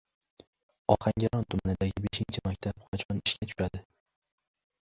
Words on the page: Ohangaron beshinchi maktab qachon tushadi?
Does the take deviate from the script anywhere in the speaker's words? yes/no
yes